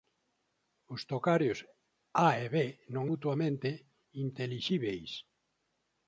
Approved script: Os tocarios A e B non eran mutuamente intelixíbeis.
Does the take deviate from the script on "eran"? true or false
true